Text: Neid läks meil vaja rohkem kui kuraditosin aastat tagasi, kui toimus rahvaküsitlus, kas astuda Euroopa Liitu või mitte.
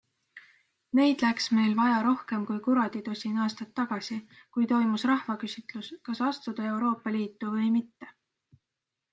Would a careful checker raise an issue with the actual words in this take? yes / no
no